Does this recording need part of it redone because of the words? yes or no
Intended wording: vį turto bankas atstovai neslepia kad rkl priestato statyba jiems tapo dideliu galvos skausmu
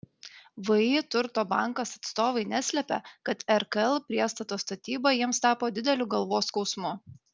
no